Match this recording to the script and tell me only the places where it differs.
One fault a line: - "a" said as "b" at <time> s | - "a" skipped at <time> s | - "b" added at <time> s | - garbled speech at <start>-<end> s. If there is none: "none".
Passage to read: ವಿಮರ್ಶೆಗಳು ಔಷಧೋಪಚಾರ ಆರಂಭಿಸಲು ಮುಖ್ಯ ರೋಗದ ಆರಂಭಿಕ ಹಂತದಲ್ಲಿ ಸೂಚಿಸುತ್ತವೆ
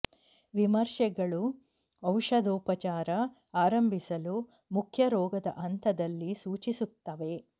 - "ಆರಂಭಿಕ" skipped at 5.5 s